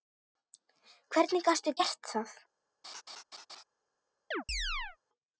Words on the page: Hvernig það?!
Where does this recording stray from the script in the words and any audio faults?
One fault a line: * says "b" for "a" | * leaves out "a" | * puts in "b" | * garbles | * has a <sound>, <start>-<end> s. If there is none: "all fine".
* puts in "gastu gert"
* has a laugh, 2.8-3.6 s
* has a chirp, 4.3-5.0 s